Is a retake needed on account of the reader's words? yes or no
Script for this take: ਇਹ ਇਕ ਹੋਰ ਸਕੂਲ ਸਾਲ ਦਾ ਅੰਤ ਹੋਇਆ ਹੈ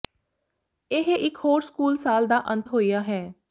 no